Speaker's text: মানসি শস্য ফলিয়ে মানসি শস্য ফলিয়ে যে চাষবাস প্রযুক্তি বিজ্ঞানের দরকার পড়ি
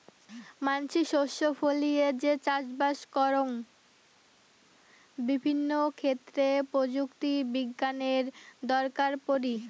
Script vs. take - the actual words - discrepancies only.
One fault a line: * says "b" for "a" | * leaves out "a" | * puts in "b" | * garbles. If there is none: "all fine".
* says "যে চাষবাস করং বিভিন্ন ক্ষেত্রে" for "মানসি শস্য ফলিয়ে যে চাষবাস"